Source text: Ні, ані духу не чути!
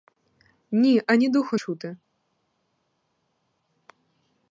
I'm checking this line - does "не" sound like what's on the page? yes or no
no